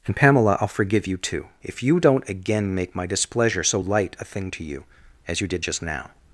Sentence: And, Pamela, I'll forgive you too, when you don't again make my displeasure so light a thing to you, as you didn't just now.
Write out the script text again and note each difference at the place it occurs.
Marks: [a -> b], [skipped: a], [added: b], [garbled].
And, Pamela, I'll forgive you too, [when -> if] you don't again make my displeasure so light a thing to you, as you [didn't -> did] just now.